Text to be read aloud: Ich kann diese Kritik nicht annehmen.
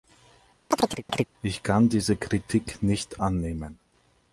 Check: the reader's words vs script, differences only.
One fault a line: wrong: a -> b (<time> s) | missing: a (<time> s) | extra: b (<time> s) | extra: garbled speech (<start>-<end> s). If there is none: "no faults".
no faults